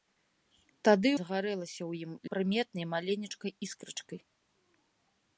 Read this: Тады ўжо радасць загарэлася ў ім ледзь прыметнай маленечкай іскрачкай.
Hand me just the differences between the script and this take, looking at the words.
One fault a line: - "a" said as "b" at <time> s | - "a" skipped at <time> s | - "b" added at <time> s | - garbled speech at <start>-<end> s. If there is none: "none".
- "ўжо радасць" skipped at 1.1 s
- "ледзь" skipped at 2.1 s